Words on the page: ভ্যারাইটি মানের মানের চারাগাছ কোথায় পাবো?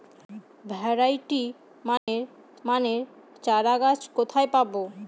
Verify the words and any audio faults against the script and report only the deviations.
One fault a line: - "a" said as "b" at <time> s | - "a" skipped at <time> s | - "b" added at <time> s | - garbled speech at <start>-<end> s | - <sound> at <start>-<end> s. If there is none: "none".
- dropout at 2.0-2.1 s